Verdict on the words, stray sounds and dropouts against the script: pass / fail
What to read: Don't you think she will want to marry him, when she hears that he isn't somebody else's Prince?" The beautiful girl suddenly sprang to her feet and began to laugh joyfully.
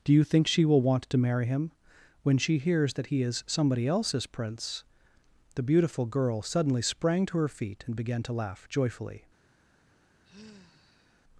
fail